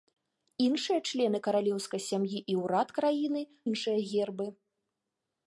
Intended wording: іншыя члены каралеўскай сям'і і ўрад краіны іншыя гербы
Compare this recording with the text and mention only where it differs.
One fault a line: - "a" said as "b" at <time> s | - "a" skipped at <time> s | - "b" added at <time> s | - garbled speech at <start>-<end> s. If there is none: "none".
none